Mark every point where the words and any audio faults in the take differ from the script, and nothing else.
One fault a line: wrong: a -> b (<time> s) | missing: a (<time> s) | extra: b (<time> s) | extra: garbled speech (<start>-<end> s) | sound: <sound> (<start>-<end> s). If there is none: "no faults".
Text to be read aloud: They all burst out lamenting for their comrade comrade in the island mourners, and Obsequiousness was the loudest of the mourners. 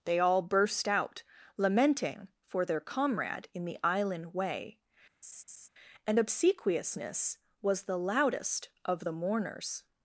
missing: comrade (3.5 s)
wrong: mourners -> way (4.3 s)
sound: laugh (5.2-5.7 s)